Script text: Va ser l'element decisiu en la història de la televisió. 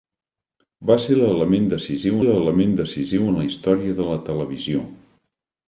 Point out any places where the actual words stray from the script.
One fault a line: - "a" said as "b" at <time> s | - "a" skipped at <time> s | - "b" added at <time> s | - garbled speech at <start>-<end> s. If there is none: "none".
- "l'element decisiu" added at 2.2 s